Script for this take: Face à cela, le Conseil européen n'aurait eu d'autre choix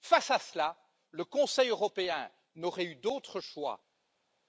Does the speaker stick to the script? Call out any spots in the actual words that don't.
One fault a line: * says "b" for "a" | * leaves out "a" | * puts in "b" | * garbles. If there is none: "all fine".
all fine